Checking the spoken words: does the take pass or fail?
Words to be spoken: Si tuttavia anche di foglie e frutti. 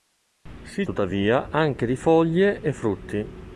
pass